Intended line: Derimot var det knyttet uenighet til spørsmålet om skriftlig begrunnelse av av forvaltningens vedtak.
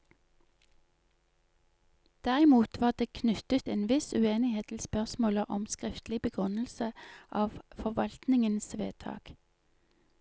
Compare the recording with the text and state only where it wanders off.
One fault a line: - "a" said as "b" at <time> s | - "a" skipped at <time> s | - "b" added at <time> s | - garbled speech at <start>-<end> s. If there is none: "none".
- "en viss" added at 3.7 s
- "av" skipped at 7.6 s